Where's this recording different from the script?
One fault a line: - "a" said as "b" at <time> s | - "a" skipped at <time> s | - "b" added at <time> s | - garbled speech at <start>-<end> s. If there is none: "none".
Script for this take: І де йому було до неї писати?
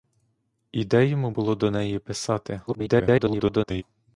- garbled speech at 2.7-3.8 s